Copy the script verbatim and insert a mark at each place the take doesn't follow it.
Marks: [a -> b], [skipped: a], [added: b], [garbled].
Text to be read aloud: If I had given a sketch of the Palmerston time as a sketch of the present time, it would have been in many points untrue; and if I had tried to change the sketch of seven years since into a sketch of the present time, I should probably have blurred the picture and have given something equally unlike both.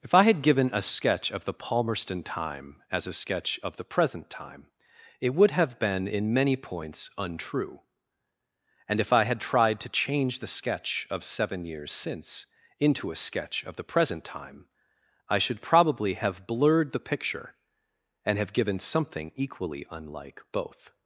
If I had given a sketch of the Palmerston time as a sketch of the present time, it would have been in many points untrue; and if I had tried to change the sketch of seven years since into a sketch of the present time, I should probably have blurred the picture and have given something equally unlike both.